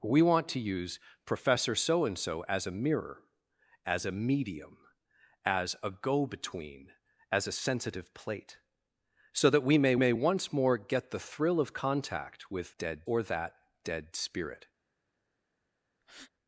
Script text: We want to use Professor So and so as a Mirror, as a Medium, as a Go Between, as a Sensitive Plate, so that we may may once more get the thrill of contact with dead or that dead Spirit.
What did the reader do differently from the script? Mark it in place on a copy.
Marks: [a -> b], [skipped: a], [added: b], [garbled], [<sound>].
We want to use Professor So and so as a Mirror, as a Medium, as a Go Between, as a Sensitive Plate, so that we may may once more get the thrill of contact with dead or that dead Spirit. [breath]